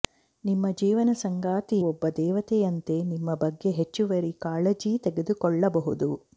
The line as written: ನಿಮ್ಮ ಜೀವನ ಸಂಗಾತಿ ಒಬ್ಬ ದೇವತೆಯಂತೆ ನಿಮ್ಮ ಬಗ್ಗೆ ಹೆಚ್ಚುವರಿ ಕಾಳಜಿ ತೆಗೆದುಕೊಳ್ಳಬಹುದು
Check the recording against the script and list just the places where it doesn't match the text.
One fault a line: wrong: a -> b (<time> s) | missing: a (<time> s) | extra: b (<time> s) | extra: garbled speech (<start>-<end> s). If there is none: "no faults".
no faults